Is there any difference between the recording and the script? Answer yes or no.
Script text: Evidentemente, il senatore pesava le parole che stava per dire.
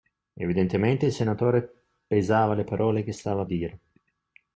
yes